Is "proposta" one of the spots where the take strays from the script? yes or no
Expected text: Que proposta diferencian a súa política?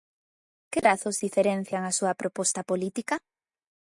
yes